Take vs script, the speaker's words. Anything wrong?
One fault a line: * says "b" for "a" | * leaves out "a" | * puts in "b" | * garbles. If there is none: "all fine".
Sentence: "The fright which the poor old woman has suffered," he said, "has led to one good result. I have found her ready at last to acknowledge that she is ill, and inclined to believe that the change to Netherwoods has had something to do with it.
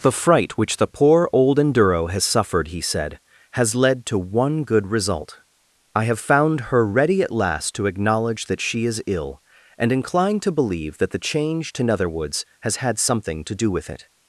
* says "enduro" for "woman"